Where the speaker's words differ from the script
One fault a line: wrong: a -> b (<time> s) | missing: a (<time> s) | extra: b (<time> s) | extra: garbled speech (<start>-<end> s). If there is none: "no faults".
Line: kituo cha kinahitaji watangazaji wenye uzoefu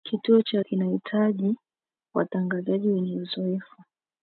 no faults